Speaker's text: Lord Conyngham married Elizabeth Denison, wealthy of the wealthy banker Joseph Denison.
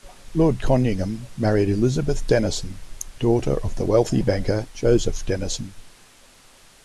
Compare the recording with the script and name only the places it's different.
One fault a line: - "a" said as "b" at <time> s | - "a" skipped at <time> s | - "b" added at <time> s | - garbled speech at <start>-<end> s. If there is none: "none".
- "wealthy" said as "daughter" at 3.2 s